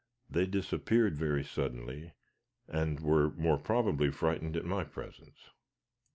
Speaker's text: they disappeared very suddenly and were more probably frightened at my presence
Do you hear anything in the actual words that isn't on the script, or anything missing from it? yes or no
no